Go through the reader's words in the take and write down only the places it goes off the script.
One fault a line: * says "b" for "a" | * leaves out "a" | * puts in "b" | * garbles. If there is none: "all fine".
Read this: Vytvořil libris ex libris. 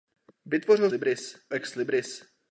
all fine